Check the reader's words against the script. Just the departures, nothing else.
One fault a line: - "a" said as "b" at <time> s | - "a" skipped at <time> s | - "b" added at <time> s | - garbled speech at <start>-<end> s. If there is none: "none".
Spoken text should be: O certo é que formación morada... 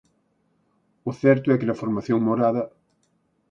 - "na" added at 1.7 s